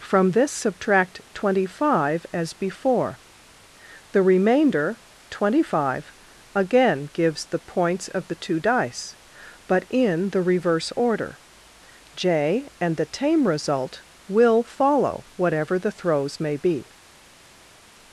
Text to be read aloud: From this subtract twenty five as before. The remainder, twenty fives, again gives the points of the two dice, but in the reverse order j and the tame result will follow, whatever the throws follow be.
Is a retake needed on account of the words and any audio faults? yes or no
yes